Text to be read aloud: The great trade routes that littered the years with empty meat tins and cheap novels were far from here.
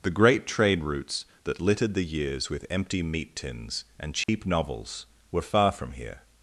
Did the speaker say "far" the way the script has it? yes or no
yes